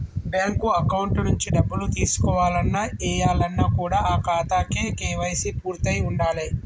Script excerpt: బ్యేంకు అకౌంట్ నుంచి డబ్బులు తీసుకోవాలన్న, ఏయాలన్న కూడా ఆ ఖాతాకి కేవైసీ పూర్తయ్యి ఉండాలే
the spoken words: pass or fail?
pass